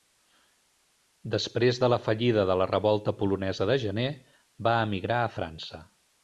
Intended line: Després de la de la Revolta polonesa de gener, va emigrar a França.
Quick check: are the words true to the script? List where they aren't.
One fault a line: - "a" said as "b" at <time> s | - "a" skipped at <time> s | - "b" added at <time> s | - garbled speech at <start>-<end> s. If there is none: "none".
- "fallida" added at 2.0 s